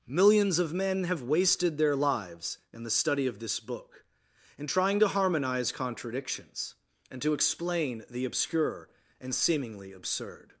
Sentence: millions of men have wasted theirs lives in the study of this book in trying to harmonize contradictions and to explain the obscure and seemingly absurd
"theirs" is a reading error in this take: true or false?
true